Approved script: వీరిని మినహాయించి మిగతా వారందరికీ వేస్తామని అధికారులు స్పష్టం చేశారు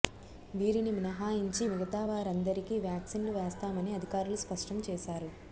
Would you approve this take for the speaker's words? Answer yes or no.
no